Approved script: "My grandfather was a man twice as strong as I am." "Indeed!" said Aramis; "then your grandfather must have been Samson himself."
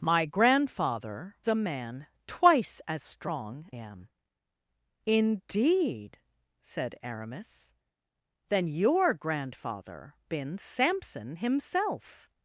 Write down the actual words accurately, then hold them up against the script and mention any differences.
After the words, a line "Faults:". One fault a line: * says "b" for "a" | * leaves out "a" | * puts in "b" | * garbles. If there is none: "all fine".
"My grandfather a man twice as strong am." "Indeed!" said Aramis; "then your grandfather been Samson himself."
Faults:
* leaves out "was"
* leaves out "as I"
* leaves out "must have"